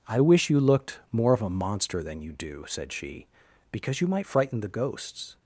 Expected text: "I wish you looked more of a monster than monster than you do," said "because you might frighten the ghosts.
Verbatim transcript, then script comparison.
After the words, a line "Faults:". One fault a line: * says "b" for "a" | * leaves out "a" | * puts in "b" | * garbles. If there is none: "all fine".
"I wish you looked more of a monster than you do," said she, "because you might frighten the ghosts.
Faults:
* leaves out "monster than"
* puts in "she"